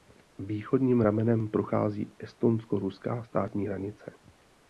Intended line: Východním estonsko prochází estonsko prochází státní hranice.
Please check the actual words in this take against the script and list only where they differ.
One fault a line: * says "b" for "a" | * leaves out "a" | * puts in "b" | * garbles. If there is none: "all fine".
* says "ramenem" for "estonsko"
* says "ruská" for "prochází"